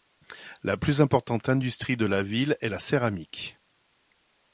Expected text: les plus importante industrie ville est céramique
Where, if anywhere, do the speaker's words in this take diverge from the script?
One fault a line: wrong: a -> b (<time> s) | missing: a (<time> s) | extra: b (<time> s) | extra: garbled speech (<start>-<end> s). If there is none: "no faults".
wrong: les -> la (0.6 s)
extra: de la (1.9 s)
extra: la (2.7 s)